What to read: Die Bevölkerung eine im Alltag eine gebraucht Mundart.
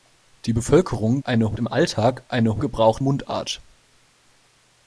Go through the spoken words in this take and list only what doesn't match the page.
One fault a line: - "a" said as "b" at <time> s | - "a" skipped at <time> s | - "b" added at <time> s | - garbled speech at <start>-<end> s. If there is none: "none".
none